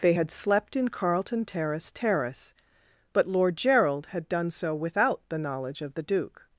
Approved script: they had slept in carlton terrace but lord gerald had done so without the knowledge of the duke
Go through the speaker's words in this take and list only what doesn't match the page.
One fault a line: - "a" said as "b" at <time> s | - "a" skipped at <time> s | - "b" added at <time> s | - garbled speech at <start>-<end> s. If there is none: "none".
- "terrace" added at 1.9 s